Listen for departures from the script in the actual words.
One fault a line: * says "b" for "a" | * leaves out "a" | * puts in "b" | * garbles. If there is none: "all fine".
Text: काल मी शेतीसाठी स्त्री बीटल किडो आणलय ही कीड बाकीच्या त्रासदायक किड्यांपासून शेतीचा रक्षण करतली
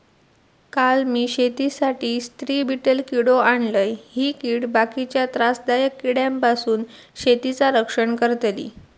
all fine